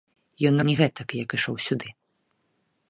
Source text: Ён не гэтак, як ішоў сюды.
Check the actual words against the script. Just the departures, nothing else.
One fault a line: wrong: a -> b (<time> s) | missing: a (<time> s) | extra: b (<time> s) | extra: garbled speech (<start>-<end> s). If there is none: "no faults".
no faults